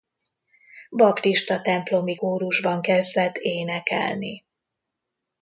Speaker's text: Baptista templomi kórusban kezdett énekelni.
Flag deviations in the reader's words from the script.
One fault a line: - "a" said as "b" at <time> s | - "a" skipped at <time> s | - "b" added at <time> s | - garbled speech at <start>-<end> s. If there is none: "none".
none